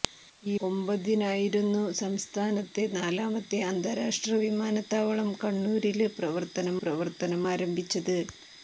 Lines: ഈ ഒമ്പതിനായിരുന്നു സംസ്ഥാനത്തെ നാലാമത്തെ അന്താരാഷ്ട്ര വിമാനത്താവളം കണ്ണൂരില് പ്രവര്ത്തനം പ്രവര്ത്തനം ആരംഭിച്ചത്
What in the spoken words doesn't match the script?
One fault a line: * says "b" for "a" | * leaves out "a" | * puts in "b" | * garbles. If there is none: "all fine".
all fine